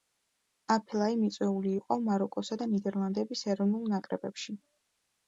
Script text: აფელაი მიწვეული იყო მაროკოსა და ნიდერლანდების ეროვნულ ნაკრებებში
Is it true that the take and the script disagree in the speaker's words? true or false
false